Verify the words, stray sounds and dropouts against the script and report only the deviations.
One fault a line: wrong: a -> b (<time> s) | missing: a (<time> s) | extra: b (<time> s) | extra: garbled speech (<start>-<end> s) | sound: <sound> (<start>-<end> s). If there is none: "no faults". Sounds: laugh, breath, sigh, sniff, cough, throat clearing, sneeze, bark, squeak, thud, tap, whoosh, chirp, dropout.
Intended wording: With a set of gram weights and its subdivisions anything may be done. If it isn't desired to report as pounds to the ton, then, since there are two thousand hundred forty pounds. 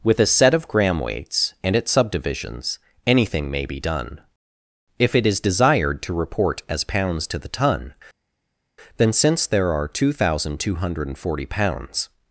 wrong: isn't -> is (5.3 s)
extra: two (10.6 s)